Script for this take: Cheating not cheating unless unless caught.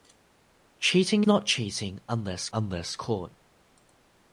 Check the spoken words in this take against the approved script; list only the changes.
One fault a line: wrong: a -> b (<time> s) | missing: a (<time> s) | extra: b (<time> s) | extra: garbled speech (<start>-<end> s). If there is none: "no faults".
no faults